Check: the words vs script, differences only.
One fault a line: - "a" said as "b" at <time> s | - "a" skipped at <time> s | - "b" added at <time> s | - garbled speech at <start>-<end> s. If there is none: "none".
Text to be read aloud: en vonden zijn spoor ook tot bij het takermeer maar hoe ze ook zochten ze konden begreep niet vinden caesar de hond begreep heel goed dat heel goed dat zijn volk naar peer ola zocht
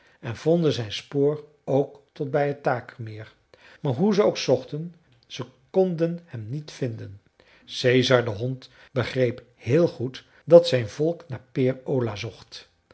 - "begreep" said as "hem" at 6.2 s
- "heel goed dat" skipped at 10.7 s